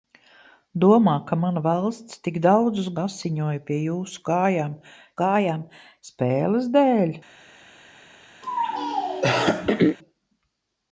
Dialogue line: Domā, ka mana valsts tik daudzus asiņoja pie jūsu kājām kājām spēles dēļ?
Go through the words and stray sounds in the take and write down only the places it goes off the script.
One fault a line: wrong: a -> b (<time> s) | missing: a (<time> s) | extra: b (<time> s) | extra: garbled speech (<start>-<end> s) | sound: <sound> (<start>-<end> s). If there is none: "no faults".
sound: throat clearing (8.4-10.0 s)